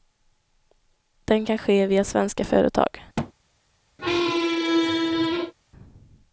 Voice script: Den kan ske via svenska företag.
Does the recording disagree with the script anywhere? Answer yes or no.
no